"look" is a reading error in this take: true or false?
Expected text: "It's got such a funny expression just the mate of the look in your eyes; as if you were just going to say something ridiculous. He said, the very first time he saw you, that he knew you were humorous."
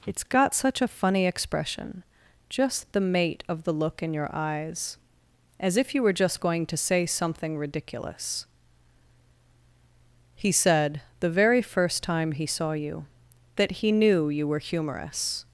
false